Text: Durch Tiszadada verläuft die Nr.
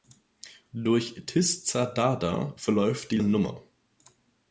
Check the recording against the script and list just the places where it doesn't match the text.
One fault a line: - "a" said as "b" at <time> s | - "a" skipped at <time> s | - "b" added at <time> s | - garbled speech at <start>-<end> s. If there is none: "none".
none